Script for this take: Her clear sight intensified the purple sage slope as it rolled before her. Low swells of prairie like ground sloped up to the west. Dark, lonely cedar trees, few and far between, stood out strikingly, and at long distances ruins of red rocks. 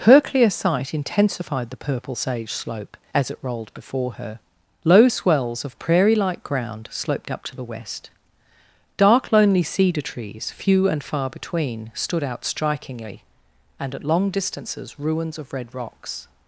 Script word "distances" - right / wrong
right